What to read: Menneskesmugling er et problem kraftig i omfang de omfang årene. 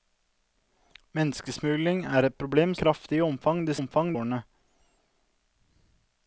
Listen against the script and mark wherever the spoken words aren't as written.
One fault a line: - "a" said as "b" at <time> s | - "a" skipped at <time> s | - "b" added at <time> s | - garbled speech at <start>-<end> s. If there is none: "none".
none